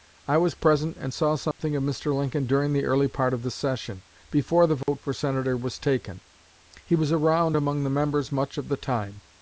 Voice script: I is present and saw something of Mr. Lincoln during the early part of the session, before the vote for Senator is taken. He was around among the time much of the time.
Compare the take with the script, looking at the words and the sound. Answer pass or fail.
fail